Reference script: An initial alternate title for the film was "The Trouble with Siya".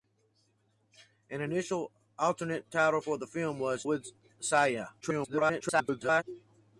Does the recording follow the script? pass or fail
fail